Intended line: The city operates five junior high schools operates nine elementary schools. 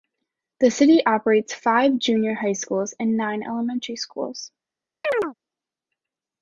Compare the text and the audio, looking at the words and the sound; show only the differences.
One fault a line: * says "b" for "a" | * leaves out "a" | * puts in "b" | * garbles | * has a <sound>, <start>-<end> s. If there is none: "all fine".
* says "and" for "operates"
* has a chirp, 5.0-5.3 s